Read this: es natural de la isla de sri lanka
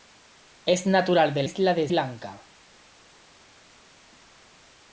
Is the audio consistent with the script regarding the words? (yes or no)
no